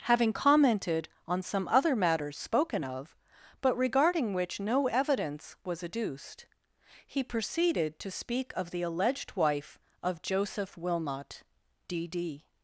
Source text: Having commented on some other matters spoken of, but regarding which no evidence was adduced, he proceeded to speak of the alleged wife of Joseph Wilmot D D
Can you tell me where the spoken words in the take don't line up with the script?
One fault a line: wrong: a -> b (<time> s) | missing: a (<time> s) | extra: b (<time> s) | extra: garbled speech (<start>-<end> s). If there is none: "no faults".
no faults